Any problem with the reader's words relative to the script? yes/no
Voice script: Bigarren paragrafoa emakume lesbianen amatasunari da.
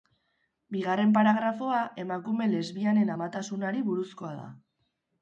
yes